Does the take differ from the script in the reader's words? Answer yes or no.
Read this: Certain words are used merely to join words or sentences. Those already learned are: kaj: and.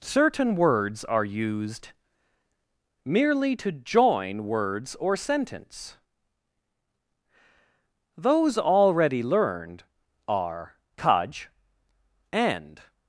yes